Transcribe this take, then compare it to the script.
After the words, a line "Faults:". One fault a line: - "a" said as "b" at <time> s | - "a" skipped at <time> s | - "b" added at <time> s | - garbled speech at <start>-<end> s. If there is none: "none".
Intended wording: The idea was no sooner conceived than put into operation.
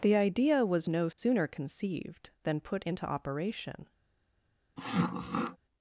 The idea was no sooner conceived than put into operation.
Faults:
none